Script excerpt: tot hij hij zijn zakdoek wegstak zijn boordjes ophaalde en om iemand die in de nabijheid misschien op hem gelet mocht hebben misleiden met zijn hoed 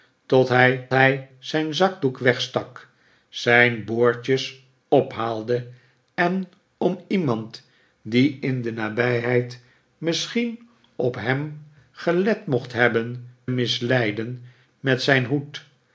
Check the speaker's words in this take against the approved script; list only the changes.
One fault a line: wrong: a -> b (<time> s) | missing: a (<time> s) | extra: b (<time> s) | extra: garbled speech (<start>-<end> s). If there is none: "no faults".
no faults